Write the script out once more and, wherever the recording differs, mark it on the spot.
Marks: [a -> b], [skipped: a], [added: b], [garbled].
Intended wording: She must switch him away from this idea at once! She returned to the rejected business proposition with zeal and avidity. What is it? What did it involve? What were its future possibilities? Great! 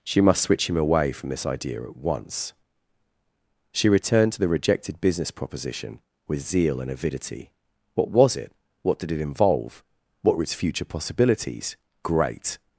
She must switch him away from this idea at once! She returned to the rejected business proposition with zeal and avidity. What [is -> was] it? What did it involve? What were its future possibilities? Great!